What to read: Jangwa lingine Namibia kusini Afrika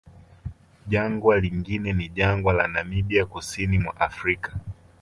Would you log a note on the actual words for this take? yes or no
yes